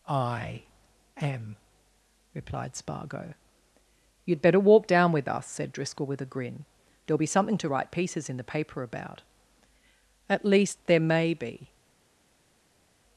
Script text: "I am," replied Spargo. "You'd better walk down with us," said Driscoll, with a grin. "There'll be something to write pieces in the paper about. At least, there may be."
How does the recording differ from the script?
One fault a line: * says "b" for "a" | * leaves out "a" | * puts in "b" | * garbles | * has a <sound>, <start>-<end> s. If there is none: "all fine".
all fine